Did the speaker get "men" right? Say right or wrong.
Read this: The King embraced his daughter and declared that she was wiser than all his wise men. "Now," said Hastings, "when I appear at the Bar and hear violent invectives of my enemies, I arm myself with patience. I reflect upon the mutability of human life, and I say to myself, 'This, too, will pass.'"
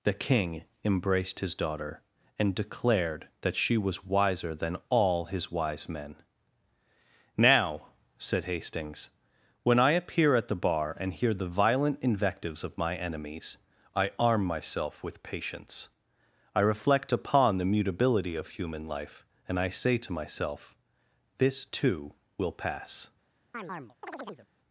right